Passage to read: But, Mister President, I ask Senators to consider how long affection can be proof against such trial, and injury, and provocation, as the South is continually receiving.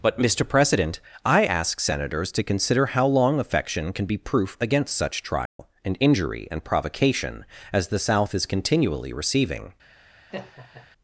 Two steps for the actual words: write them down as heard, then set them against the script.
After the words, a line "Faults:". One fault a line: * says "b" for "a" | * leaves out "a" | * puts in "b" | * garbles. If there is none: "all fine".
But, Mister President, I ask Senators to consider how long affection can be proof against such trial, and injury, and provocation, as the South is continually receiving.
Faults:
all fine